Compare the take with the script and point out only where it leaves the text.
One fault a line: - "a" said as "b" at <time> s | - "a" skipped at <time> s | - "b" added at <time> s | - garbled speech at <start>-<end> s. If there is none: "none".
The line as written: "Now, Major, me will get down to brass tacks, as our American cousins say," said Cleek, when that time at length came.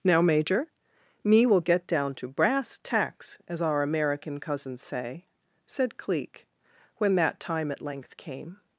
none